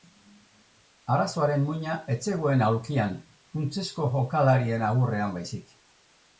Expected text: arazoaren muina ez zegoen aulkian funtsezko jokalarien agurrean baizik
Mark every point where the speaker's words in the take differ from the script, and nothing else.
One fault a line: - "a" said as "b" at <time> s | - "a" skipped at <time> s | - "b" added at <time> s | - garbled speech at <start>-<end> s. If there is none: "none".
none